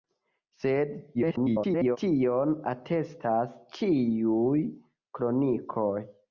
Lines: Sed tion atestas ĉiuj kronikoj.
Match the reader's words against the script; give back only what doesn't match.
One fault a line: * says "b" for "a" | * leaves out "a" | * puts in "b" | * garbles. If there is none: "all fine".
* garbles